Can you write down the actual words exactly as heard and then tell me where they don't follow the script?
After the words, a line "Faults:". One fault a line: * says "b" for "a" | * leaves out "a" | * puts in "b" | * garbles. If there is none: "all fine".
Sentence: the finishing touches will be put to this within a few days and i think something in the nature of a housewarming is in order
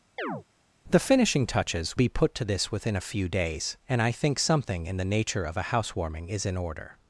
the finishing touches be put to this within a few days and i think something in the nature of a housewarming is in order
Faults:
* leaves out "will"